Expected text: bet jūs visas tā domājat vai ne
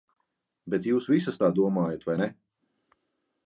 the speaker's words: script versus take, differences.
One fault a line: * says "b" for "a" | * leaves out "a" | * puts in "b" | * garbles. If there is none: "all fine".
all fine